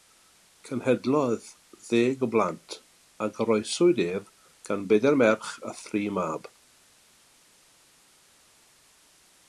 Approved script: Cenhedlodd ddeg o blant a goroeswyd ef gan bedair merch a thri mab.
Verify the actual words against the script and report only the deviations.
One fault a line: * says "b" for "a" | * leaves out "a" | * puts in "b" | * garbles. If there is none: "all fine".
all fine